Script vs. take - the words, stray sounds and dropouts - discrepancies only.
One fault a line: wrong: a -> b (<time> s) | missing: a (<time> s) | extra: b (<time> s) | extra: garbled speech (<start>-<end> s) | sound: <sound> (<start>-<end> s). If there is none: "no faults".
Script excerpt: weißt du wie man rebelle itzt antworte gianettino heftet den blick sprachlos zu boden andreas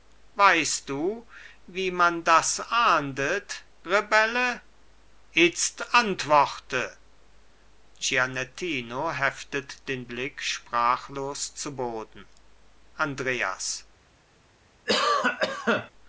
extra: das ahndet (2.2 s)
sound: cough (14.9-15.9 s)